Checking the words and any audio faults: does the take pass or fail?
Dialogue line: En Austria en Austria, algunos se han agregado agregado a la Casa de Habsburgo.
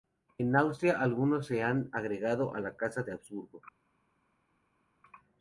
fail